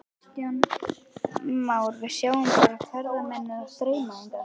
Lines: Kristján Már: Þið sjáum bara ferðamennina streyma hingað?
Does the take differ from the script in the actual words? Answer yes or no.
yes